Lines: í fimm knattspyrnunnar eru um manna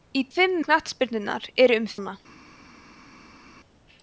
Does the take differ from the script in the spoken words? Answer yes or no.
no